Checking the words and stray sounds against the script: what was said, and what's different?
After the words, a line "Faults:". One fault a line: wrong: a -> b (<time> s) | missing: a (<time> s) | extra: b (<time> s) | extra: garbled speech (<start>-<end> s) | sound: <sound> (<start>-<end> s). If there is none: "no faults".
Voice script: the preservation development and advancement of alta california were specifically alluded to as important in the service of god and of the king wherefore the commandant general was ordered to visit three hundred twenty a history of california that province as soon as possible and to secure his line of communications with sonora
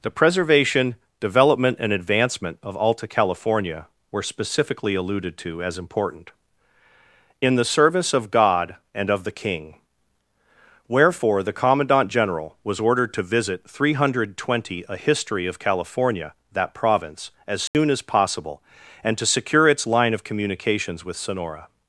the preservation development and advancement of alta california were specifically alluded to as important in the service of god and of the king wherefore the commandant general was ordered to visit three hundred twenty a history of california that province as soon as possible and to secure its line of communications with sonora
Faults:
sound: dropout (17.7-17.7 s)
wrong: his -> its (19.7 s)